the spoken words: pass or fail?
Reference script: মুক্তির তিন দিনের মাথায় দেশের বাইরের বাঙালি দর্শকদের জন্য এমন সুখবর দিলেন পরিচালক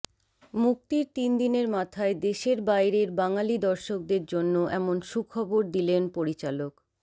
pass